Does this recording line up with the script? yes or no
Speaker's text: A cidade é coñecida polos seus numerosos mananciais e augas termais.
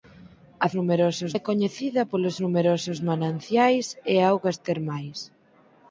no